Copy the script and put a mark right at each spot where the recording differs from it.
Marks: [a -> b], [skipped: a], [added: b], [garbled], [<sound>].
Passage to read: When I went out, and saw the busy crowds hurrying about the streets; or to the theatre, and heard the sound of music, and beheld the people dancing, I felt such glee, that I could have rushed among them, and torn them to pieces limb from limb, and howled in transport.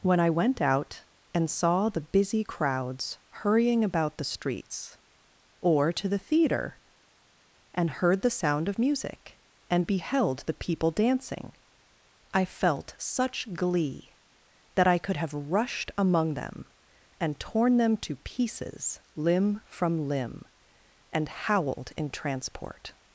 When I went out, and saw the busy crowds hurrying about the streets; or to the theatre, and heard the sound of music, and beheld the people dancing, I felt such glee, that I could have rushed among them, and torn them to pieces limb from limb, and howled in transport.